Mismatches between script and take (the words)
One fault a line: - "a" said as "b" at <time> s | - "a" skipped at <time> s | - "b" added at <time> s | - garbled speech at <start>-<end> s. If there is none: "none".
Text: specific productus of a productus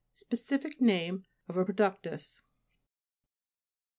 - "productus" said as "name" at 0.8 s